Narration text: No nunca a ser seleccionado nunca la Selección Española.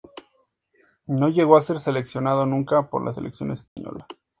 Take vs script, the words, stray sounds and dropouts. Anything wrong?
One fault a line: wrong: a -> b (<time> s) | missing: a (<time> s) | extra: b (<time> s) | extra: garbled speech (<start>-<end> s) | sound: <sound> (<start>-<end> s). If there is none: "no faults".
wrong: nunca -> llegó (1.3 s)
extra: por (2.9 s)
sound: dropout (3.7-3.8 s)